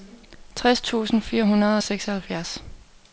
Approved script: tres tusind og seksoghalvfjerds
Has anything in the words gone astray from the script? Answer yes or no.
yes